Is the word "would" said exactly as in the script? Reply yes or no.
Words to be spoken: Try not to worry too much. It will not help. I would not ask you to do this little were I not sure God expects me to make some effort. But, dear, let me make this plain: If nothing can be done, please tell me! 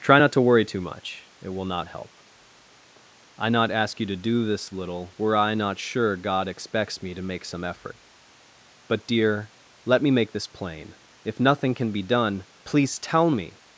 no